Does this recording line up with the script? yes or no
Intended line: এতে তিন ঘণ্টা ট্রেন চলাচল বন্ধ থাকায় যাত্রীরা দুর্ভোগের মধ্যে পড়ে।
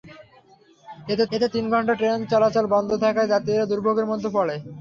no